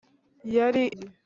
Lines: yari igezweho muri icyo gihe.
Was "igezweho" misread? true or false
true